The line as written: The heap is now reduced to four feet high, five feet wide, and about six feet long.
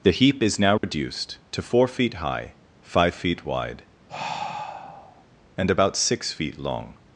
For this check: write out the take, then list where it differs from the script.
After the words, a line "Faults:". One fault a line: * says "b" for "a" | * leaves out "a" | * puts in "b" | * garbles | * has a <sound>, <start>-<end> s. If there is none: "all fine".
The heap is now reduced to four feet high, five feet wide, and about six feet long.
Faults:
* has a dropout, 0.8-0.8 s
* has a sigh, 4.1-5.2 s